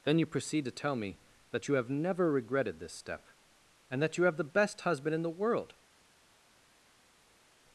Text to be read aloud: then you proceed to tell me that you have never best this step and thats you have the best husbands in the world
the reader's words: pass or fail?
fail